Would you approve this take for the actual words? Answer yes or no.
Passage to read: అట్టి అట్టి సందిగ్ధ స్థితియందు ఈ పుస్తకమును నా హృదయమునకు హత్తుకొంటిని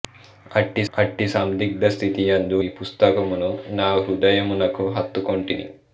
yes